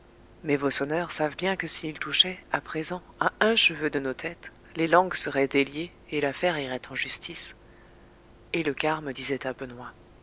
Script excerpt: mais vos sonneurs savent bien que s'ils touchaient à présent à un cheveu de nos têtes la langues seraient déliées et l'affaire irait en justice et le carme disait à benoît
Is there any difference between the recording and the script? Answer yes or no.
yes